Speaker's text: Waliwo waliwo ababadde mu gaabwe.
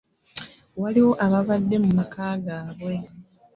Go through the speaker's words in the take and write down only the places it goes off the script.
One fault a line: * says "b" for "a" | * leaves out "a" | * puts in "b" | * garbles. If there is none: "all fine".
* leaves out "waliwo"
* puts in "maka"